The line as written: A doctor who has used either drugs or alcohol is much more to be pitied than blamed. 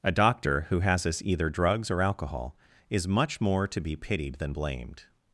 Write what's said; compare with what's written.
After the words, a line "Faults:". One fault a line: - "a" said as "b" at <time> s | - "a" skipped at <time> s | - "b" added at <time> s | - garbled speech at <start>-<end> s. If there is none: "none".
A doctor who has us either drugs or alcohol is much more to be pitied than blamed.
Faults:
- "used" said as "us" at 1.1 s